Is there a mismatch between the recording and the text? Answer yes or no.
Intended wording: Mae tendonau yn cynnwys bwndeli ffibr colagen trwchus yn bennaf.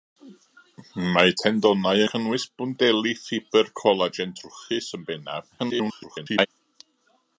yes